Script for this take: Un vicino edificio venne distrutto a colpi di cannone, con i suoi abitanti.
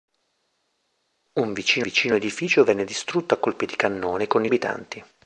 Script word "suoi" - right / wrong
wrong